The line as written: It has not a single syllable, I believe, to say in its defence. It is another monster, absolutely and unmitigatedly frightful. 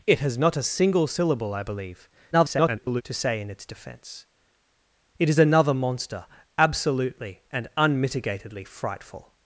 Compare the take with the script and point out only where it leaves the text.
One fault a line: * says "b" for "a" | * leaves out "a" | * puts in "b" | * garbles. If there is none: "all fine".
* garbles